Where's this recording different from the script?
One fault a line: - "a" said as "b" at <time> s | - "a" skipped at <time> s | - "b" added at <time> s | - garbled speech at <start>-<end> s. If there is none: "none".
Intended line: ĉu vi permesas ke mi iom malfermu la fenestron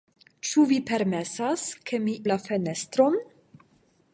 - "iom malfermu" skipped at 2.1 s